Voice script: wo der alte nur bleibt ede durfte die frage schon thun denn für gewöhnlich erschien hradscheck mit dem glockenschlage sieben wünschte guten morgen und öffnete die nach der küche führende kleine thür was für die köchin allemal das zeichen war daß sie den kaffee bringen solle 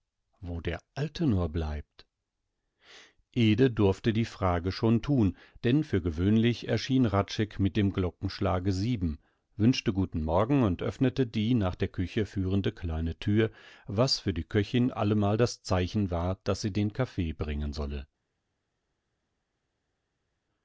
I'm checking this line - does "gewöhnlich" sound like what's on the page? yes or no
yes